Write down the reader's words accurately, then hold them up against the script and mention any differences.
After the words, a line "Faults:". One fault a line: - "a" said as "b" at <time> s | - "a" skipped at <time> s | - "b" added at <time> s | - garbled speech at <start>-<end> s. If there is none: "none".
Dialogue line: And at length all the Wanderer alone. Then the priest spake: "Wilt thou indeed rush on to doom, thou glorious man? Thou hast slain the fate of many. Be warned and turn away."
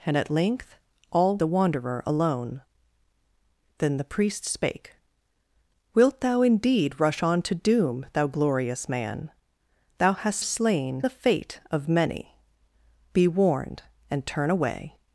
And at length all the Wanderer alone. Then the priest spake: "Wilt thou indeed rush on to doom, thou glorious man? Thou hast slain the fate of many. Be warned and turn away."
Faults:
none